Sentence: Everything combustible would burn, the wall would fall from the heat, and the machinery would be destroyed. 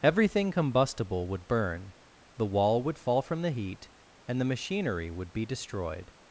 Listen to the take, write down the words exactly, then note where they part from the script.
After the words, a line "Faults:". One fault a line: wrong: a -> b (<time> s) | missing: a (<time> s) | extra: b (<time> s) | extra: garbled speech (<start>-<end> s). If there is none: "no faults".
Everything combustible would burn, the wall would fall from the heat, and the machinery would be destroyed.
Faults:
no faults